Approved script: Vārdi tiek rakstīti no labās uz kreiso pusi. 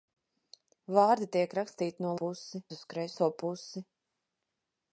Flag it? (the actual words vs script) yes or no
yes